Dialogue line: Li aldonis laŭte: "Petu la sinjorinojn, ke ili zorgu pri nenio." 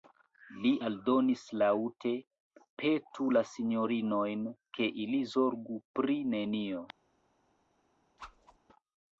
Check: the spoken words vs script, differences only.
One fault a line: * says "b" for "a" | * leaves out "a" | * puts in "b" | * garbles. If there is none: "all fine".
all fine